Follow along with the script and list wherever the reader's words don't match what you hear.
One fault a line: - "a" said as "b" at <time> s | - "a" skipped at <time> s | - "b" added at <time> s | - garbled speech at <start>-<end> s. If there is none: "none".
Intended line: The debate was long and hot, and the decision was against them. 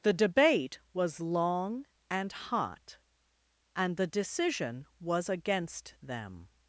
none